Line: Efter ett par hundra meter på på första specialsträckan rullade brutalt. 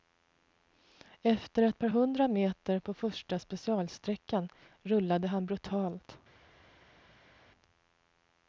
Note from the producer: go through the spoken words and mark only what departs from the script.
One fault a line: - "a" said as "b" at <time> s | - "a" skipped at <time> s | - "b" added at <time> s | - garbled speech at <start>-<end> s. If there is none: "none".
- "på" skipped at 2.9 s
- "han" added at 5.3 s